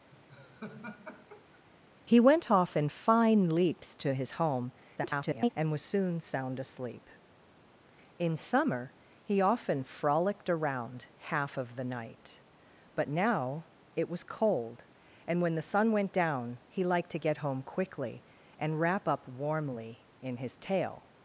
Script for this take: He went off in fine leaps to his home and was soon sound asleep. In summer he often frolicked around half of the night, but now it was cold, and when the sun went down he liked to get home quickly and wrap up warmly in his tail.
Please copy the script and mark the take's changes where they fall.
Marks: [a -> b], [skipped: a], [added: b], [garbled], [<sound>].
[laugh] He went off in fine leaps to his home [garbled] and was soon sound asleep. In summer he often frolicked around half of the night, but now it was cold, and when the sun went down he liked to get home quickly and wrap up warmly in his tail.